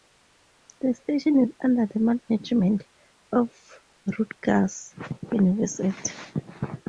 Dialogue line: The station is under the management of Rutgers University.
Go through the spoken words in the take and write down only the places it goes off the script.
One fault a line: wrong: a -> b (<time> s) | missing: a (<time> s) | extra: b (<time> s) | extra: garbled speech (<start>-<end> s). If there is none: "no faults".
no faults